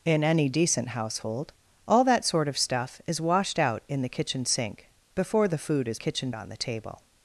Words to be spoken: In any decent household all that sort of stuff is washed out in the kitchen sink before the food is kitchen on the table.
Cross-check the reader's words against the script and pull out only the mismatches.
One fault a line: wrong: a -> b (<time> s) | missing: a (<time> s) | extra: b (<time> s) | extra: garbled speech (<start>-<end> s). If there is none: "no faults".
no faults